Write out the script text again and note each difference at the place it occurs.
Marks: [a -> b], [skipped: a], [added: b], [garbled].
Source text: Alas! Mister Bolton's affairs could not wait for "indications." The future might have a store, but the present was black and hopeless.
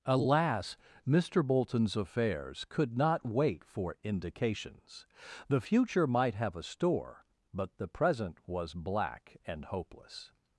Alas! Mister Bolton's affairs could not wait for "indications." The future might have a store, but the present was black and hopeless.